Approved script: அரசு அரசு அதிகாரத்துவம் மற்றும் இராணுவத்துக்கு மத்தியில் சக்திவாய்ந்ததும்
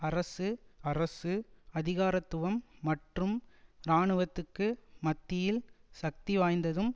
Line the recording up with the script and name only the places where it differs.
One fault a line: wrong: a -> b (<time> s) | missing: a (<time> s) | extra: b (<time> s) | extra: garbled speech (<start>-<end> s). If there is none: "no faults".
no faults